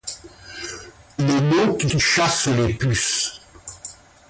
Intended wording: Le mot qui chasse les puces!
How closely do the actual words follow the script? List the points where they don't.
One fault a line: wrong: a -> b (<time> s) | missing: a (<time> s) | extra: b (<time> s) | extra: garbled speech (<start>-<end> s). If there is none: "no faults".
extra: qui (1.9 s)